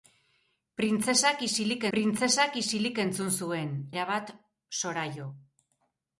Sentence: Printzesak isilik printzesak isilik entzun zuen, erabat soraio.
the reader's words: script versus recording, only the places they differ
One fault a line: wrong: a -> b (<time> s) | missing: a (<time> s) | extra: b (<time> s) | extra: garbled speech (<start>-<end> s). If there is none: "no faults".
no faults